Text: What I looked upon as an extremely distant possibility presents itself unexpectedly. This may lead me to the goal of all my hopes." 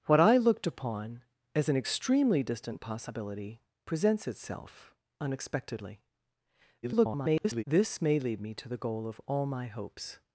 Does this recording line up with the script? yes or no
no